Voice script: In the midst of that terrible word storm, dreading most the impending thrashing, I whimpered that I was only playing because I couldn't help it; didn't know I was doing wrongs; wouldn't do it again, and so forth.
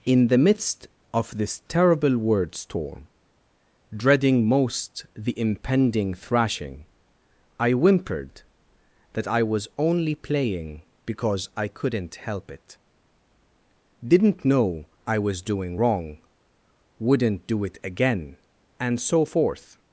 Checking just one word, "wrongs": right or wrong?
wrong